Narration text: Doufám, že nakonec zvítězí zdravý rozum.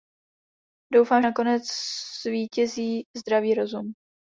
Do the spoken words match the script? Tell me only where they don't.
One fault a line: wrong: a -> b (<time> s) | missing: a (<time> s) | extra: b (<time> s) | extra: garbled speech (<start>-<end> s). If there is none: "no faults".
missing: že (1.2 s)